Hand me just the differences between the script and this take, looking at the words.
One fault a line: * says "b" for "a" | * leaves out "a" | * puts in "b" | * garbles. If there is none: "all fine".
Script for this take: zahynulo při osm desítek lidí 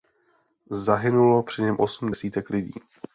* puts in "něm"